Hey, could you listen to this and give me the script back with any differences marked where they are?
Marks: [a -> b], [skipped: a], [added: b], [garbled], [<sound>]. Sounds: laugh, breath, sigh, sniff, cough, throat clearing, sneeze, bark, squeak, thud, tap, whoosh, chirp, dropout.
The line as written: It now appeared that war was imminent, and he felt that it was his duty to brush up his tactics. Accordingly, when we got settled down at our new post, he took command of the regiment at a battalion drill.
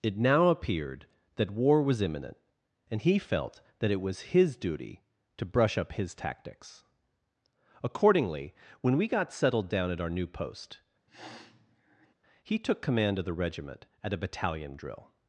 It now appeared that war was imminent, and he felt that it was his duty to brush up his tactics. Accordingly, when we got settled down at our new post, [sniff] he took command of the regiment at a battalion drill.